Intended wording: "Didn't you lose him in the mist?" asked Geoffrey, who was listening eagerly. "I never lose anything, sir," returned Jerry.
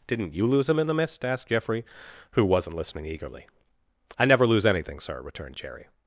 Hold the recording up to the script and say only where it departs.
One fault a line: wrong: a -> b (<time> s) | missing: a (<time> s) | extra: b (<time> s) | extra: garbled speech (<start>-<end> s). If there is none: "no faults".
wrong: was -> wasn't (2.4 s)